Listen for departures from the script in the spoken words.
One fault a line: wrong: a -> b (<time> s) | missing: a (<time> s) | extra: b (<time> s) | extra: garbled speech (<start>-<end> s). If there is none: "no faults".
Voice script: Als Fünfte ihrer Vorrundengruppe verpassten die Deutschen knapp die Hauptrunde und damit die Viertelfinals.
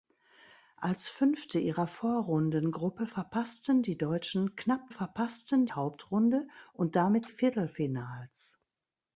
wrong: die -> verpassten (4.9 s)
missing: die (7.3 s)